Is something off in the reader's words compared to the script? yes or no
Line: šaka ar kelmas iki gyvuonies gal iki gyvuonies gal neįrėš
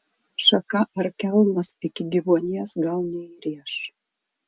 yes